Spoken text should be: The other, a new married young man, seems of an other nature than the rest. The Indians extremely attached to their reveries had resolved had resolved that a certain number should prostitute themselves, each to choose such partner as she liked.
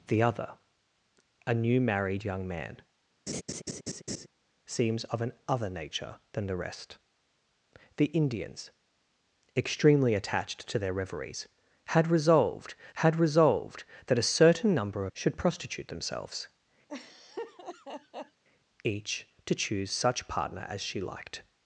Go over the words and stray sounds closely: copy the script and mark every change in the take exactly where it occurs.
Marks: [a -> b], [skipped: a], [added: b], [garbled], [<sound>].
The other, a new married young man, [laugh] seems of an other nature than the rest. The Indians extremely attached to their reveries had resolved had resolved that a certain number should prostitute themselves, [laugh] each to choose such partner as she liked.